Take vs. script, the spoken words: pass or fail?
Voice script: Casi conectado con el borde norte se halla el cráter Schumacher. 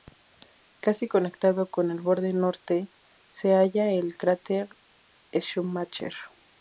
pass